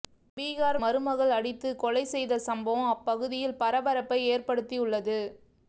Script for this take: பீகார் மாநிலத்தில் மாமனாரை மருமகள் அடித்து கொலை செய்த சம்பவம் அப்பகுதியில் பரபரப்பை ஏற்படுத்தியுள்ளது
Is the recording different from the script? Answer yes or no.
yes